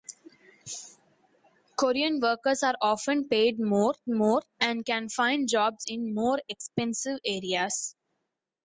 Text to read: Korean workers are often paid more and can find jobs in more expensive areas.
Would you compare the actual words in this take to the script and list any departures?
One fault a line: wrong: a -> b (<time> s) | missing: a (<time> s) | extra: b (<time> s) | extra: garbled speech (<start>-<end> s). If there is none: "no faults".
extra: more (4.1 s)